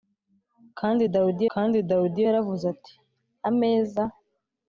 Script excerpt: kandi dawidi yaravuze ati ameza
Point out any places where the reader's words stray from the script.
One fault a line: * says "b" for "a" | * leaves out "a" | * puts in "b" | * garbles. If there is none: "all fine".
* puts in "kandi dawidi"